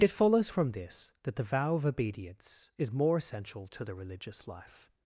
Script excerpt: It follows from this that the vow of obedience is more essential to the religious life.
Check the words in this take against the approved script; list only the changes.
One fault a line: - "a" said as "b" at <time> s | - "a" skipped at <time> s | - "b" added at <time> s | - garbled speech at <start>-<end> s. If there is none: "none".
none